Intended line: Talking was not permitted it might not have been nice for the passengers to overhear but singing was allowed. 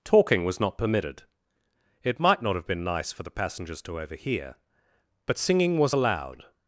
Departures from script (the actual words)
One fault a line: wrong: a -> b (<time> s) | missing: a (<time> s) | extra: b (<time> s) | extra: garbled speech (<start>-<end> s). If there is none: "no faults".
no faults